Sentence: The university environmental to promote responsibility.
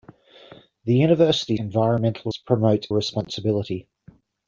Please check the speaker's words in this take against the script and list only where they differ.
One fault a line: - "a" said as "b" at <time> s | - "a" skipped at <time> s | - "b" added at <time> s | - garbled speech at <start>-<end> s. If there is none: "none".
none